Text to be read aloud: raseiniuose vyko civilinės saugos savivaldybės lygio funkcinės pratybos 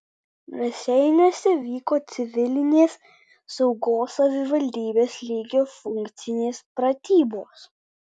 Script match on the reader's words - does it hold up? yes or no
yes